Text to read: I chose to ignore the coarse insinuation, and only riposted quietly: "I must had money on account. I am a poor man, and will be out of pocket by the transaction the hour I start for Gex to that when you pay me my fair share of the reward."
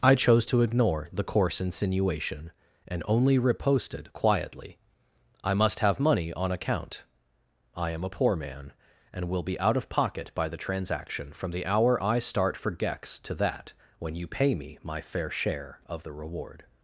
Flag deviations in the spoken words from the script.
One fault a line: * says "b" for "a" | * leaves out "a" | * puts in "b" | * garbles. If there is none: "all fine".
* says "have" for "had"
* puts in "from"